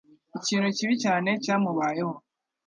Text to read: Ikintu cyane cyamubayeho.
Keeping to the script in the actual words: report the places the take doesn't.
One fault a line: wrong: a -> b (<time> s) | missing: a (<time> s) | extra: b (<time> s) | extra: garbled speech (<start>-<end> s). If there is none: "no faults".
extra: kibi (0.8 s)